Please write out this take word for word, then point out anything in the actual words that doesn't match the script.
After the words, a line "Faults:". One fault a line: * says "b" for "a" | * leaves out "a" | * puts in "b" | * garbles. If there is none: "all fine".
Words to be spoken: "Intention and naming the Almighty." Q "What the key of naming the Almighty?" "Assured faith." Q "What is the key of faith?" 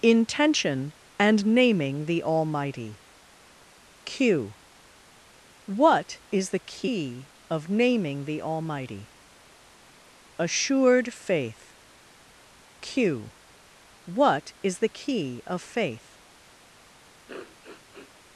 "Intention and naming the Almighty." Q "What is the key of naming the Almighty?" "Assured faith." Q "What is the key of faith?"
Faults:
* puts in "is"